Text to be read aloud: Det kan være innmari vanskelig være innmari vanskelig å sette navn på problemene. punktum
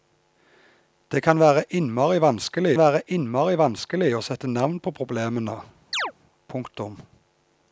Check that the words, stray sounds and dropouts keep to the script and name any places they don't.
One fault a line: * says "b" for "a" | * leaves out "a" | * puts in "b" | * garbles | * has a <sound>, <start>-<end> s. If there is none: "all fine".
* has a chirp, 5.9-6.1 s